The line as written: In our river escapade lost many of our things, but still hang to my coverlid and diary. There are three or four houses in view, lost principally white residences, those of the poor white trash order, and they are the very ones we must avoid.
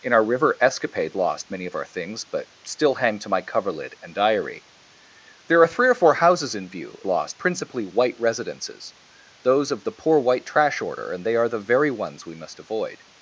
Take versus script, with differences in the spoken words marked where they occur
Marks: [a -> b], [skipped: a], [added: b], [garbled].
In our river escapade lost many of our things, but still hang to my coverlid and diary. There are three or four houses in view, lost principally white residences, those of the poor white trash order, and they are the very ones we must avoid.